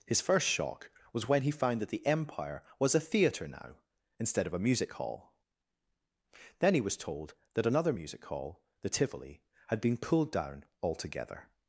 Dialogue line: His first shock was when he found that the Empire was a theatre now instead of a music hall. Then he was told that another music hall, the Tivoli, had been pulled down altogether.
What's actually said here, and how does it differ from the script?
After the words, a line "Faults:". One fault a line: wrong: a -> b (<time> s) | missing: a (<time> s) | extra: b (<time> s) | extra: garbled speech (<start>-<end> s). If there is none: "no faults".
His first shock was when he found that the Empire was a theatre now instead of a music hall. Then he was told that another music hall, the Tivoli, had been pulled down altogether.
Faults:
no faults